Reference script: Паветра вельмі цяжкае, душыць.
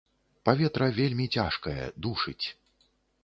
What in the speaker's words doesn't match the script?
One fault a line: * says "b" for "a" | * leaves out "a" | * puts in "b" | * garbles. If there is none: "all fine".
all fine